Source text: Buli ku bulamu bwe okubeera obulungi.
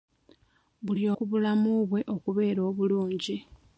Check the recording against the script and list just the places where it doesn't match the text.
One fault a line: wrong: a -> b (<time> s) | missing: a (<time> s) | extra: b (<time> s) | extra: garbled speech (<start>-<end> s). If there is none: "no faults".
no faults